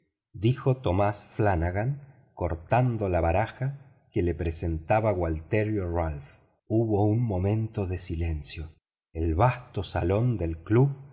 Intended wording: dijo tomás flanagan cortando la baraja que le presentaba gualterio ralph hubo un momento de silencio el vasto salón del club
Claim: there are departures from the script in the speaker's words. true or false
false